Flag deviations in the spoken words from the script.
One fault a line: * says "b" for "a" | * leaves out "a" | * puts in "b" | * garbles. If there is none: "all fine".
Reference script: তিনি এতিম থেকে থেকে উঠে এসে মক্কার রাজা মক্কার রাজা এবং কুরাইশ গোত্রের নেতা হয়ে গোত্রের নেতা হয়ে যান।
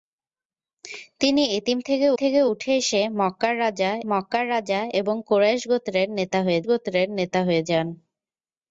all fine